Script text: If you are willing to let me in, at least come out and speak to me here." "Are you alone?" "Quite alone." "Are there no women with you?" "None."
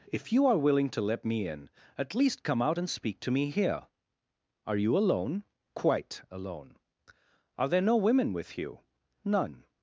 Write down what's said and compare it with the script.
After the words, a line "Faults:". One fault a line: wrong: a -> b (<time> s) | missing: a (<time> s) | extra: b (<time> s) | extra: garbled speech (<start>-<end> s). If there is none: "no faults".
If you are willing to let me in, at least come out and speak to me here." "Are you alone?" "Quite alone." "Are there no women with you?" "None."
Faults:
no faults